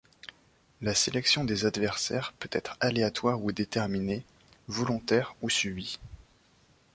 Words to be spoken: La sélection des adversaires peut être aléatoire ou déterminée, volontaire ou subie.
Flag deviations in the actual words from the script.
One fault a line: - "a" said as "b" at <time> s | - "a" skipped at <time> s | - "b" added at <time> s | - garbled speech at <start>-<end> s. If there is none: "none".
none